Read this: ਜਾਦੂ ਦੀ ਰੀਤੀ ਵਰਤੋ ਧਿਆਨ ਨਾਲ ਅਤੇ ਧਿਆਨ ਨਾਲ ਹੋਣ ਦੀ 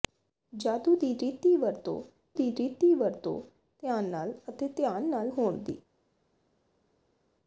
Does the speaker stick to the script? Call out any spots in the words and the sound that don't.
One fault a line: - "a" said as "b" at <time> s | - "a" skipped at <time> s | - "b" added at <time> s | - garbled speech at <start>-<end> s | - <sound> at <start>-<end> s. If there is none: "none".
- "ਦੀ ਰੀਤੀ ਵਰਤੋ" added at 2.3 s